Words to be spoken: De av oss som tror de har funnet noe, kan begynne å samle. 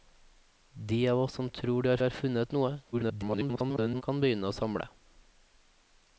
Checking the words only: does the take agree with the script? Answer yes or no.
no